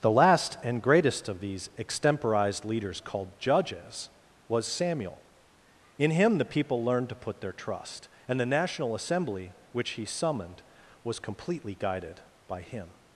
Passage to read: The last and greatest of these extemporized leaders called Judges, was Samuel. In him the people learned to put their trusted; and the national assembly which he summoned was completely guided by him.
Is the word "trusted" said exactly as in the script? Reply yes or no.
no